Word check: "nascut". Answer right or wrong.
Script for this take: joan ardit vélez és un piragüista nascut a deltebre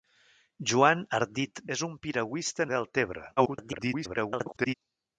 wrong